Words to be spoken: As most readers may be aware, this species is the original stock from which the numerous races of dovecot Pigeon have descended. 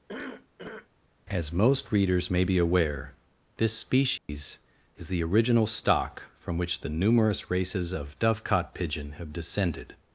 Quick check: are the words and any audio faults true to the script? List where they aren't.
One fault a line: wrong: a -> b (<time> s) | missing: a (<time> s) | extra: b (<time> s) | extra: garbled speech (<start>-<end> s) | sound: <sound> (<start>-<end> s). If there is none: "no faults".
sound: cough (0.1-0.9 s)
sound: dropout (4.2-4.3 s)